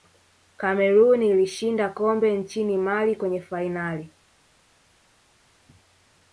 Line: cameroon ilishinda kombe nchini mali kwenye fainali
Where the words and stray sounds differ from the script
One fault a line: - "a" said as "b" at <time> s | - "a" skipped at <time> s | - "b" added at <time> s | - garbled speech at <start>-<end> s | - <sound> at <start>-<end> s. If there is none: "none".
none